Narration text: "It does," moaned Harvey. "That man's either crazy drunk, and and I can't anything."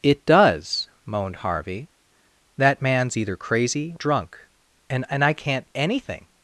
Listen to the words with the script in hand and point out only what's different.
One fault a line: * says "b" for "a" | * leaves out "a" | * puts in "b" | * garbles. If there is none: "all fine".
all fine